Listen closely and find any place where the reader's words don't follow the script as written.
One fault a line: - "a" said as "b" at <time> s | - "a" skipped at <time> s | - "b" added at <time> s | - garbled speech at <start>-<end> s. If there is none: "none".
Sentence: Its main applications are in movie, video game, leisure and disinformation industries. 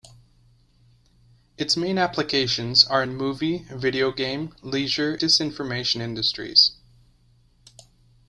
- "and" skipped at 5.2 s